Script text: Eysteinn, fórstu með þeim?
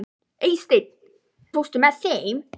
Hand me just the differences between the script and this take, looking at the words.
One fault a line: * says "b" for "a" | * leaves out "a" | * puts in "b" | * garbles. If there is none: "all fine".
all fine